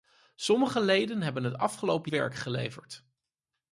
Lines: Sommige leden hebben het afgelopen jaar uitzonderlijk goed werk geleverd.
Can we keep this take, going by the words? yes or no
no